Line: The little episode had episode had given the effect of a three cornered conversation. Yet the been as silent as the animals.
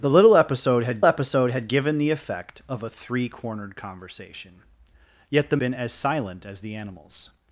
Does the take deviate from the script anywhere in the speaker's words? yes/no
no